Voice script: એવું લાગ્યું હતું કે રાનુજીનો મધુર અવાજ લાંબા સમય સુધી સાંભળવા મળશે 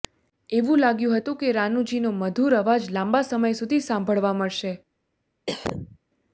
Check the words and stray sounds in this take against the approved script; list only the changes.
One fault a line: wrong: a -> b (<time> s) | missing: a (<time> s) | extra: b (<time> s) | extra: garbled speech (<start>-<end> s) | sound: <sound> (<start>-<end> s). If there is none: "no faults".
sound: cough (5.5-6.0 s)